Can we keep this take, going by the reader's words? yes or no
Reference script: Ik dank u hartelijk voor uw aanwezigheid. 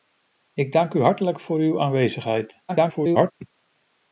no